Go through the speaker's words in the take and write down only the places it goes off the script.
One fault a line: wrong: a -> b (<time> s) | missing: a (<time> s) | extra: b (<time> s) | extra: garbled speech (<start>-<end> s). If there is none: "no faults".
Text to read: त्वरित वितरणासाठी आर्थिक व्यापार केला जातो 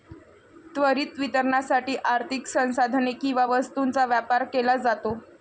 extra: संसाधने किंवा वस्तूंचा (2.5 s)